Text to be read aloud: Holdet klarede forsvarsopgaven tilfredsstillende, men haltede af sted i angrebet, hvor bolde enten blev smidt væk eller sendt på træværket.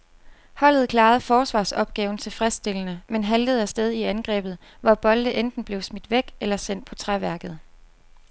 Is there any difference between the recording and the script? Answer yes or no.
no